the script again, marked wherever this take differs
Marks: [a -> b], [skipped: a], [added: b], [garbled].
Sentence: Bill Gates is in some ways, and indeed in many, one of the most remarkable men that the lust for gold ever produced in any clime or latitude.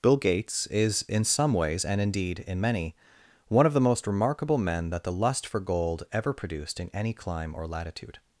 Bill Gates is in some ways, and indeed in many, one of the most remarkable men that the lust for gold ever produced in any clime or latitude.